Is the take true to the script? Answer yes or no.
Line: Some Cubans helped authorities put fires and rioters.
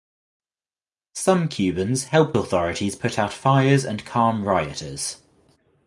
no